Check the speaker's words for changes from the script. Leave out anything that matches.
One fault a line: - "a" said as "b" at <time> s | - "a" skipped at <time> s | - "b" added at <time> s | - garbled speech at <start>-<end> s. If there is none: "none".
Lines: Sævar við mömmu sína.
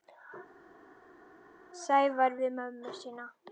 none